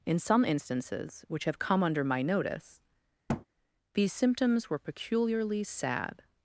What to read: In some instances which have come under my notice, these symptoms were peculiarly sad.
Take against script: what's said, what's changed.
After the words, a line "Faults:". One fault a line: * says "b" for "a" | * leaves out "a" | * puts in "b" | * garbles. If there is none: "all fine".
In some instances which have come under my notice, these symptoms were peculiarly sad.
Faults:
all fine